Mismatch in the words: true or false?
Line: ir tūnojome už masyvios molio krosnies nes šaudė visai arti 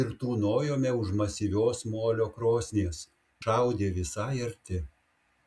true